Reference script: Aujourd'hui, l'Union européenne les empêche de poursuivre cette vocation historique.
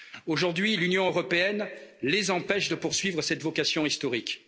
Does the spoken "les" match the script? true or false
true